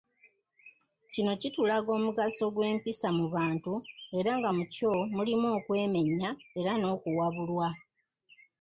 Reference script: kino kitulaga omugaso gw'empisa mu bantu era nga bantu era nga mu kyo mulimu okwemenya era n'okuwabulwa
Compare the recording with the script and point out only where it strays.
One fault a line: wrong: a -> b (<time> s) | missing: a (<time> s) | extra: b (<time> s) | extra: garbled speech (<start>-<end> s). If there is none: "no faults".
missing: bantu era nga (4.5 s)